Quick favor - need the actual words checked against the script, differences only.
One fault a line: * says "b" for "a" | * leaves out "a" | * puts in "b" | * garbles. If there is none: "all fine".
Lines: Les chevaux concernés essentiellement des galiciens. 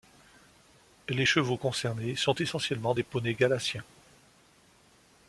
* puts in "sont"
* puts in "poneys"